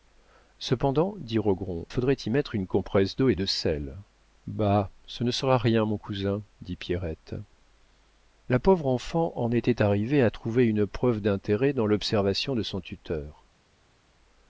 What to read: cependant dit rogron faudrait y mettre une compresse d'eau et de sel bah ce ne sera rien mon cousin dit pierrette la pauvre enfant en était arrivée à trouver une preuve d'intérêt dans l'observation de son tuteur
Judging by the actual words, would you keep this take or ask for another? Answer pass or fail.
pass